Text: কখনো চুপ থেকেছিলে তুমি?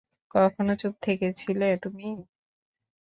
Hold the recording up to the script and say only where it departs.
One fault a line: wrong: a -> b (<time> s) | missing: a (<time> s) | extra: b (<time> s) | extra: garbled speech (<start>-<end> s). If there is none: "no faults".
no faults